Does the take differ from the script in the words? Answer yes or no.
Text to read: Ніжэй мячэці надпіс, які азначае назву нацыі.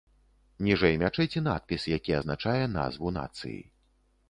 no